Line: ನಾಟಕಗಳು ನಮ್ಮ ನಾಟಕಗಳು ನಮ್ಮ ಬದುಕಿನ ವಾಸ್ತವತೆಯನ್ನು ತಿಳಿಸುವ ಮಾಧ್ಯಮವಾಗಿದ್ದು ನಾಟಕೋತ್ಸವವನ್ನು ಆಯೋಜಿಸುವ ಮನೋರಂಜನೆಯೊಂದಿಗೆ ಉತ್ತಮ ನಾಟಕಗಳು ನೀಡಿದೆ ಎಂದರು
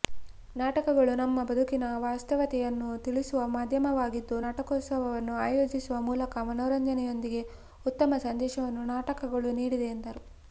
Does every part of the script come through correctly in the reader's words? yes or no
no